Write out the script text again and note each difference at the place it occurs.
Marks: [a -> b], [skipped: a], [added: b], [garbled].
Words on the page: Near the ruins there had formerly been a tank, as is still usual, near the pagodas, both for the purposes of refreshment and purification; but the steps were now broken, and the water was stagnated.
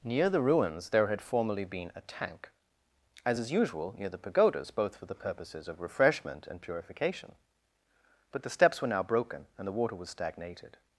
Near the ruins there had formerly been a tank, as is [skipped: still] usual, near the pagodas, both for the purposes of refreshment and purification; but the steps were now broken, and the water was stagnated.